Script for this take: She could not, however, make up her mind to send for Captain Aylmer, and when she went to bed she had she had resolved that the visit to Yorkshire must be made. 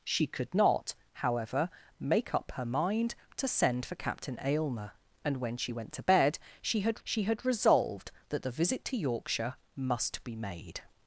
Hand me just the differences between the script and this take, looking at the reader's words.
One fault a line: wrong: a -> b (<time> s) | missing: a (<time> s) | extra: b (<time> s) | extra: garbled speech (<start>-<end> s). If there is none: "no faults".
no faults